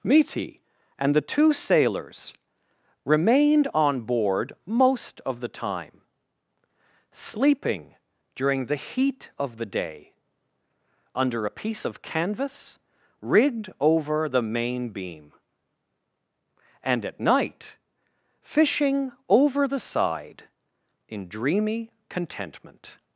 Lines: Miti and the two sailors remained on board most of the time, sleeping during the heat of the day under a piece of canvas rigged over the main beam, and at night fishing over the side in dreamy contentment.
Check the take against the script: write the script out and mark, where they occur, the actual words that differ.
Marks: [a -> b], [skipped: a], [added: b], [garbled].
Miti and the two sailors remained on board most of the time, sleeping during the heat of the day under a piece of canvas rigged over the main beam, and at night fishing over the side in dreamy contentment.